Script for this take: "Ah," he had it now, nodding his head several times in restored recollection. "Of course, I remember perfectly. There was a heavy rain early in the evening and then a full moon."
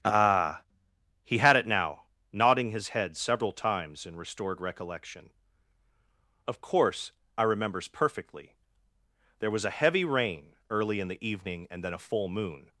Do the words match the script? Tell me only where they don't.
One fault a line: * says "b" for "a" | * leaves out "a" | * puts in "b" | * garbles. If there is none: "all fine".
* says "remembers" for "remember"